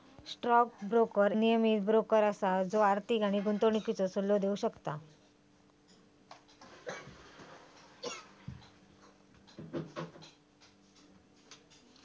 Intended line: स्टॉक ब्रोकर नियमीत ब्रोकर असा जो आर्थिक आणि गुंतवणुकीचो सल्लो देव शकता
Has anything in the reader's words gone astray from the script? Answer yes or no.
no